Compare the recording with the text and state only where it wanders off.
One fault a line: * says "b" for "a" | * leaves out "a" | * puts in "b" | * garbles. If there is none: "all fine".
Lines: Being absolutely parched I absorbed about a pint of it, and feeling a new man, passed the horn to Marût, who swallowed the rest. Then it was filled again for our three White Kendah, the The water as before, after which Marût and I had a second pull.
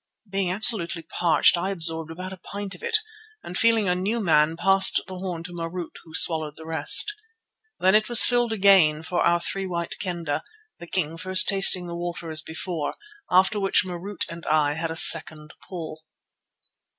* puts in "King first tasting"